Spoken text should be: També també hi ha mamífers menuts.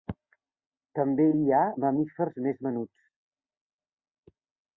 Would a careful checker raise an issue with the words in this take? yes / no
yes